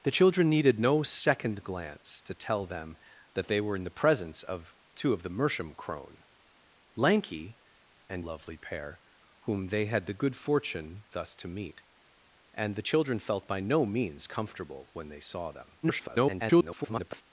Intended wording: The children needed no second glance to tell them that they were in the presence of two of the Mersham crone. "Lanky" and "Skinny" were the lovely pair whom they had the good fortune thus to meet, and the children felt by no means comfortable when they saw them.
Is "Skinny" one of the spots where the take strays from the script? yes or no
yes